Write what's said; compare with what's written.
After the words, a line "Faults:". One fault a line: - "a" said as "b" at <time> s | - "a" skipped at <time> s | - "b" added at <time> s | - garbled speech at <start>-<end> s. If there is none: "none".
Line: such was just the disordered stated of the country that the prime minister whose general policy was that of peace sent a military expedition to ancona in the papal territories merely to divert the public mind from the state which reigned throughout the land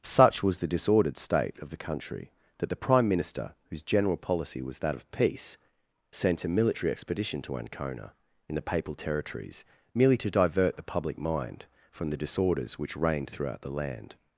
such was the disordered state of the country that the prime minister whose general policy was that of peace sent a military expedition to ancona in the papal territories merely to divert the public mind from the disorders which reigned throughout the land
Faults:
- "just" skipped at 0.6 s
- "stated" said as "state" at 1.2 s
- "state" said as "disorders" at 12.2 s